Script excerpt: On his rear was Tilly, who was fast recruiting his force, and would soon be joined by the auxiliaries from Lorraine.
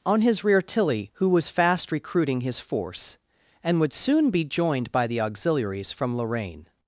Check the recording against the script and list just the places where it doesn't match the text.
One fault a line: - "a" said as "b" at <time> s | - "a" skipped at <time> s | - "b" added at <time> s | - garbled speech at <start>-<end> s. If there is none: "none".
- "was" skipped at 0.6 s